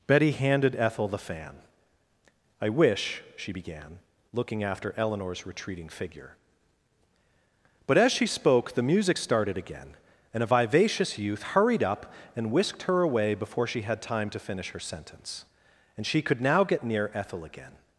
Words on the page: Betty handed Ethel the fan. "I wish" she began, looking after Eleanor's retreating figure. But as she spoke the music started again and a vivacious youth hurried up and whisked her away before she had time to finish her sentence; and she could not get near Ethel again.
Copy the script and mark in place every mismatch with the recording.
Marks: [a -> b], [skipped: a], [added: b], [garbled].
Betty handed Ethel the fan. "I wish" she began, looking after Eleanor's retreating figure. But as she spoke the music started again and a vivacious youth hurried up and whisked her away before she had time to finish her sentence; and she could [not -> now] get near Ethel again.